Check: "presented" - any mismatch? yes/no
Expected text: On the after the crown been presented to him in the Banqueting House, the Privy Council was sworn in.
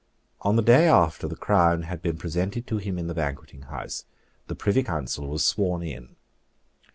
no